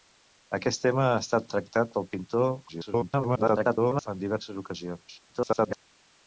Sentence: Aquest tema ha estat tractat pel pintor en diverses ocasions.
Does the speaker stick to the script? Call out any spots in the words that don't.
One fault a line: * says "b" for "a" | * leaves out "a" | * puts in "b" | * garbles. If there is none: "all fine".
* garbles
* garbles